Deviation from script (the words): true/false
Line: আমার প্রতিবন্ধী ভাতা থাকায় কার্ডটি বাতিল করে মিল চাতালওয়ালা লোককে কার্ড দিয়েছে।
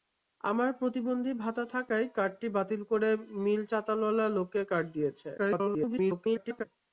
true